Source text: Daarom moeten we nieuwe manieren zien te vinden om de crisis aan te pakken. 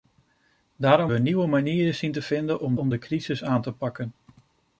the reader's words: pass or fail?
fail